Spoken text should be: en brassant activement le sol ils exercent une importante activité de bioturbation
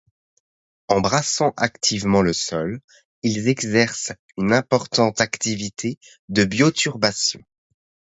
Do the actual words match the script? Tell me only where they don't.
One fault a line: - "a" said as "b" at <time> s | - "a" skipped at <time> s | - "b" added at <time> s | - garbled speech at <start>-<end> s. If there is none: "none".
none